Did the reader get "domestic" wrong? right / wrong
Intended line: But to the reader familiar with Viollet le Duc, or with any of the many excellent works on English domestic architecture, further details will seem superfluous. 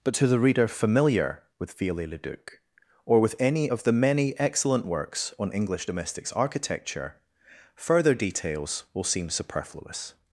wrong